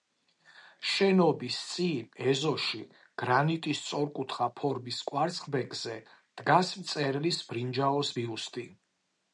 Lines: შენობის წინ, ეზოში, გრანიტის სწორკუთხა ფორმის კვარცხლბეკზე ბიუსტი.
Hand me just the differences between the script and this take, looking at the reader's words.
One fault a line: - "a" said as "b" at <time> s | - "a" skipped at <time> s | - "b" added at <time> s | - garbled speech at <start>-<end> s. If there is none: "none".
- "დგას მწერლის ბრინჯაოს" added at 6.4 s